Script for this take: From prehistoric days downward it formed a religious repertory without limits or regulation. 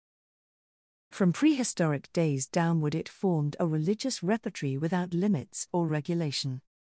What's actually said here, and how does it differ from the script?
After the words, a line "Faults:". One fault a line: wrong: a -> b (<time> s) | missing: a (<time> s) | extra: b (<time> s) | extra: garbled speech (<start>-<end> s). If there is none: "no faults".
From prehistoric days downward it formed a religious repertory without limits or regulation.
Faults:
no faults